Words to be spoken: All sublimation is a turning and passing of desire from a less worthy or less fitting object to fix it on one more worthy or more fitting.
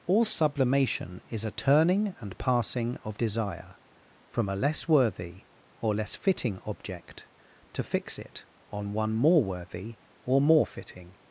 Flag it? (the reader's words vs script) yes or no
no